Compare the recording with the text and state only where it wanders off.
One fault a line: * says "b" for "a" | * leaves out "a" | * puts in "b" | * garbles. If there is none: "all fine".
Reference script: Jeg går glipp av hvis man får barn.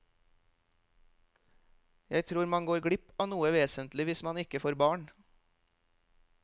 * puts in "tror man"
* puts in "noe vesentlig"
* puts in "ikke"